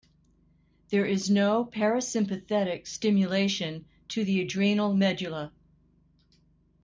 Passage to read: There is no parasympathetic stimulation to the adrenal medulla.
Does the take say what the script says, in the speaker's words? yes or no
yes